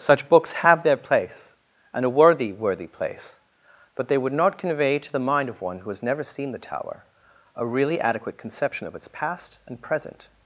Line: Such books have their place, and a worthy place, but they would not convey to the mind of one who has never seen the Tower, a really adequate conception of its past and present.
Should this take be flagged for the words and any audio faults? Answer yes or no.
yes